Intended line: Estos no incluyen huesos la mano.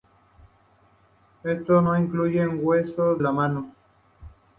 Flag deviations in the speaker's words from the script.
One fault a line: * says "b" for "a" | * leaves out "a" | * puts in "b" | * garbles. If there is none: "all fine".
all fine